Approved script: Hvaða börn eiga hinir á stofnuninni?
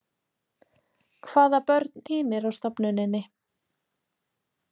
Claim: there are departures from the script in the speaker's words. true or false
true